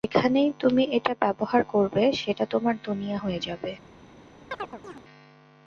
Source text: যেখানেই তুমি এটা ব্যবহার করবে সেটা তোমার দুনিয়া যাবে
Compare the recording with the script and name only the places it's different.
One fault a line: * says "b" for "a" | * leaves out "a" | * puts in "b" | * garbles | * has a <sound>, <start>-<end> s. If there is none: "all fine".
* puts in "হয়ে"
* has a chirp, 4.5-5.0 s